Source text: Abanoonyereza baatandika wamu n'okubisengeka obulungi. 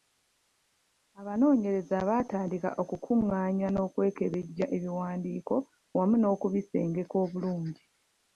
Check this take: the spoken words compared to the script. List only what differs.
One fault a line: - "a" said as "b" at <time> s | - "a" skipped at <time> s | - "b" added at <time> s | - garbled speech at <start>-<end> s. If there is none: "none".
- "okukungaanya n'okwekebejja ebiwandiiko" added at 2.8 s